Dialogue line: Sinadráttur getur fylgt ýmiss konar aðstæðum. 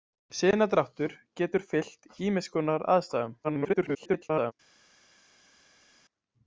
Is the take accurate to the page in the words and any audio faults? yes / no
no